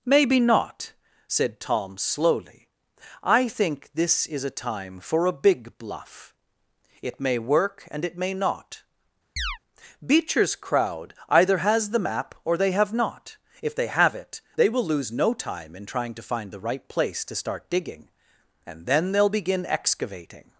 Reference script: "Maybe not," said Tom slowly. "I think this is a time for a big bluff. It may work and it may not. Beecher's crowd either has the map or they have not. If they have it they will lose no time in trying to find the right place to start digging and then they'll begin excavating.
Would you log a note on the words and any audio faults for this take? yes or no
yes